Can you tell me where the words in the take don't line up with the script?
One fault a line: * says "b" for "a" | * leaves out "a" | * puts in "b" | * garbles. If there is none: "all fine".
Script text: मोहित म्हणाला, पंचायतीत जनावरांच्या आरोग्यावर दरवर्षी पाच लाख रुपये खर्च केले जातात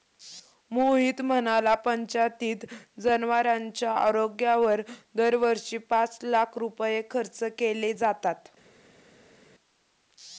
all fine